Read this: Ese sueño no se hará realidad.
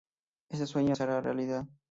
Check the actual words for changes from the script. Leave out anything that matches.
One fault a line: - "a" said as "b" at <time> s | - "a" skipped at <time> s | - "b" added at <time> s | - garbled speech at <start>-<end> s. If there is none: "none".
- "no" skipped at 0.9 s